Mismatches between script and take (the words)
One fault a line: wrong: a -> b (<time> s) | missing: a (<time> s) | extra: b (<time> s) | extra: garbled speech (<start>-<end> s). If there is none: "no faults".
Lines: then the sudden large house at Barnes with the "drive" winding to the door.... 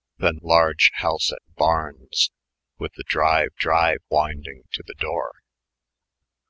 missing: the sudden (0.4 s)
extra: drive (3.5 s)